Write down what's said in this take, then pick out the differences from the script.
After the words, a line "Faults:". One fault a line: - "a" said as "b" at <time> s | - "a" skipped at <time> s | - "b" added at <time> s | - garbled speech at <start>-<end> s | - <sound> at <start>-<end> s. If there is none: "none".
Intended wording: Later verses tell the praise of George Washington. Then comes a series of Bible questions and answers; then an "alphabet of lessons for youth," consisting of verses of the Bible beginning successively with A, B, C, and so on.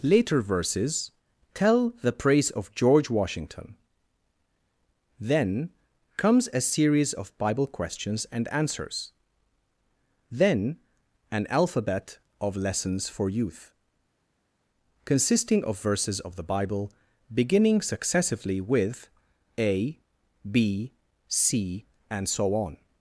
Later verses tell the praise of George Washington. Then comes a series of Bible questions and answers; then an "alphabet of lessons for youth," consisting of verses of the Bible beginning successively with A, B, C, and so on.
Faults:
none